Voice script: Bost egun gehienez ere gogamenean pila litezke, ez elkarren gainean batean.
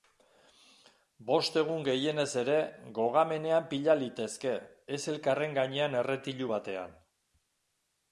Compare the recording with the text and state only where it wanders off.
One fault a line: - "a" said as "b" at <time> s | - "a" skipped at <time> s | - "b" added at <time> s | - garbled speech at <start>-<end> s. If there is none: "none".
- "erretilu" added at 6.0 s